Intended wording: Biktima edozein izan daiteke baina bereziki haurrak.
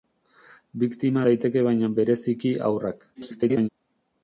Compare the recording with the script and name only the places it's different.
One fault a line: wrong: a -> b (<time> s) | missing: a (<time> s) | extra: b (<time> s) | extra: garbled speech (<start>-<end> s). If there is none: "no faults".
missing: edozein izan (1.3 s)
extra: garbled speech (3.1-3.7 s)